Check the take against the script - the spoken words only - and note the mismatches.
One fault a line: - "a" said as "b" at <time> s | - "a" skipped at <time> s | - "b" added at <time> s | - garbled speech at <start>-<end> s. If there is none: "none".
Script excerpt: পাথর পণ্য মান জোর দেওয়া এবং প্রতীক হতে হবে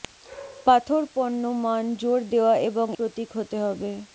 none